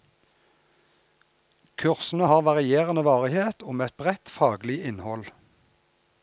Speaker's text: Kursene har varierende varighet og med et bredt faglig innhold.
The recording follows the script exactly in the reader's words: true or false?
true